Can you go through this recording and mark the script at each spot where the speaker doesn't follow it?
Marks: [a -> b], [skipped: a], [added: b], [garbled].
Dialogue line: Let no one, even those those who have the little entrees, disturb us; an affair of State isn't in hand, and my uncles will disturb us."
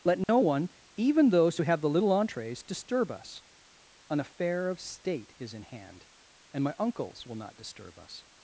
Let no one, even those [skipped: those] who have the little entrees, disturb us; an affair of State [isn't -> is] in hand, and my uncles will [added: not] disturb us."